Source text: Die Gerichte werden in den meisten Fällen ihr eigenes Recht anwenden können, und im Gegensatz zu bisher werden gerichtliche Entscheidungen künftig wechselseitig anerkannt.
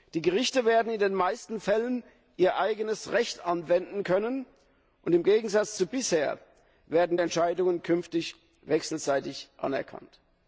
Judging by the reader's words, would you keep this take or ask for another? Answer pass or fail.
fail